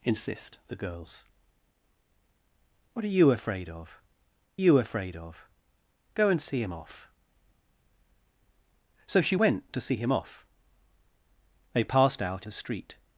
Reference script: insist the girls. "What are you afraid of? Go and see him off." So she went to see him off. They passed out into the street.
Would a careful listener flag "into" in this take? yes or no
yes